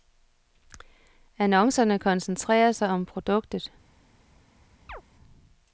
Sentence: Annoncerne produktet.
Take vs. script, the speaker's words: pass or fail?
fail